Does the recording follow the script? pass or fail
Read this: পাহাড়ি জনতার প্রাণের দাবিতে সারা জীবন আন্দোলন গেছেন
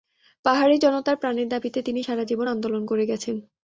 fail